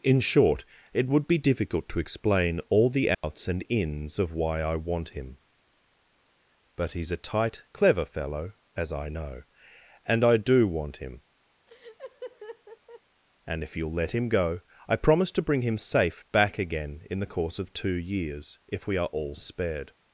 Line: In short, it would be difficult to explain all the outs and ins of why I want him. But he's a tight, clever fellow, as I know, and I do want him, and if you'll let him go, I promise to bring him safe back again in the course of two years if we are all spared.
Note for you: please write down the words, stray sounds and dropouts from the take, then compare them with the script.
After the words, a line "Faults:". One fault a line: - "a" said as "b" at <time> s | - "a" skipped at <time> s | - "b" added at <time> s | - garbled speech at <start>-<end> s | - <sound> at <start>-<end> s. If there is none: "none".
In short, it would be difficult to explain all the outs and ins of why I want him. But he's a tight, clever fellow, as I know, and I do want him, and if you'll let him go, I promise to bring him safe back again in the course of two years if we are all spared.
Faults:
- dropout at 3.1-3.2 s
- laugh at 11.7-13.0 s